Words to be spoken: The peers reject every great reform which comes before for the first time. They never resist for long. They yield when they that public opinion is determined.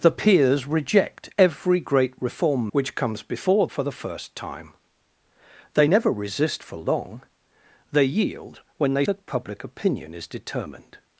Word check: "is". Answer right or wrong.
right